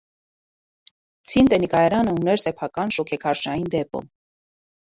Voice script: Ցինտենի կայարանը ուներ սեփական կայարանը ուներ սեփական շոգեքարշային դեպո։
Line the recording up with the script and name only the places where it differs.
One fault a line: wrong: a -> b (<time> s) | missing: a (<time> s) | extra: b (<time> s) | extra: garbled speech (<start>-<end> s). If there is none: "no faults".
missing: կայարանը ուներ սեփական (3.0 s)